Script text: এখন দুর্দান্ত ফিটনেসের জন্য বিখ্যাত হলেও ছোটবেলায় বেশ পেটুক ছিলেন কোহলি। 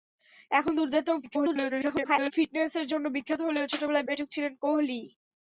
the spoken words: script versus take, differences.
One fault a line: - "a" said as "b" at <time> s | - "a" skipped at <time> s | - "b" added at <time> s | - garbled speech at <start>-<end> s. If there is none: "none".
- garbled speech at 1.2-2.3 s
- "বেশ" skipped at 4.1 s